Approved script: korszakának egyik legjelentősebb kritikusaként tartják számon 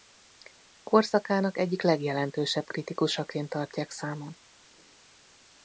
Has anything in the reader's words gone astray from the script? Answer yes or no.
no